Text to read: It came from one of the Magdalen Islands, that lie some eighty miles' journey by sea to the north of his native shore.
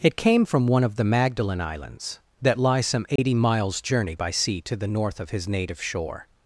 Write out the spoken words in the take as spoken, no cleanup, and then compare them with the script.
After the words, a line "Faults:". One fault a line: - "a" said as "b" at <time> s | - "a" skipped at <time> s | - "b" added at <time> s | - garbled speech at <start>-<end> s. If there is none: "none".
It came from one of the Magdalen Islands, that lie some eighty miles' journey by sea to the north of his native shore.
Faults:
none